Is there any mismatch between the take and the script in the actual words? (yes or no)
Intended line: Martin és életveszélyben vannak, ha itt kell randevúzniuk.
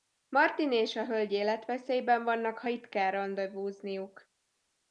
yes